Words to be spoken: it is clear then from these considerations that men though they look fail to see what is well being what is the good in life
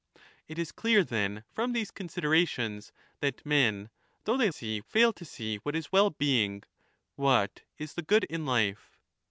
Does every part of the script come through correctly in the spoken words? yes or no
no